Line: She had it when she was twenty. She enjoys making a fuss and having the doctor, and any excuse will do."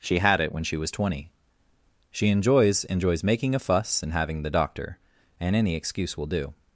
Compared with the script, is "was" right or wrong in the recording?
right